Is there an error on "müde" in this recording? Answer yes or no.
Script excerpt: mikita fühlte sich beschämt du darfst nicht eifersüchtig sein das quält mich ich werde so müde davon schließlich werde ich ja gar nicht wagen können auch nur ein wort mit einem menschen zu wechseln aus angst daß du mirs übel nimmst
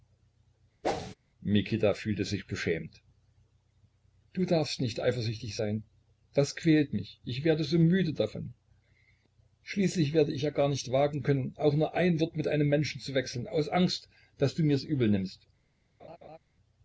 no